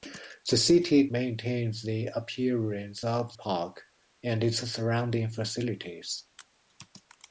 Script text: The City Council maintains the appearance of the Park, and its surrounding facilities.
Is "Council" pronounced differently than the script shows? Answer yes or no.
yes